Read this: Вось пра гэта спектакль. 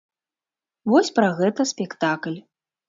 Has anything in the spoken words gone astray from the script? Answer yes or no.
no